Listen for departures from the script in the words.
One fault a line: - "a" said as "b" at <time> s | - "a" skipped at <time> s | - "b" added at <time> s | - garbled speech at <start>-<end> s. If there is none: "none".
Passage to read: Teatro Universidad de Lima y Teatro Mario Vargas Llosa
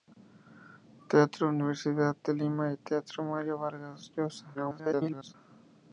- garbled speech at 4.5-5.3 s